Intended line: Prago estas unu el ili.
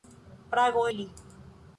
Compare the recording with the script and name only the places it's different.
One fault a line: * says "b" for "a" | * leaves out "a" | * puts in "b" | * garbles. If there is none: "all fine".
* leaves out "estas unu el"